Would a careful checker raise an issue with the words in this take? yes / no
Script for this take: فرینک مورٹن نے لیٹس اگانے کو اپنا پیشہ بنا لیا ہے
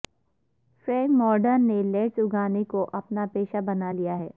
no